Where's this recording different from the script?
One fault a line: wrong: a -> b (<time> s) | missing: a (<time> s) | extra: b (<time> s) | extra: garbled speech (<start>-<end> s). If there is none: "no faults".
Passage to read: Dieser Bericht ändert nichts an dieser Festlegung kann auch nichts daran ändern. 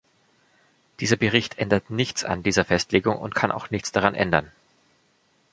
extra: und (3.2 s)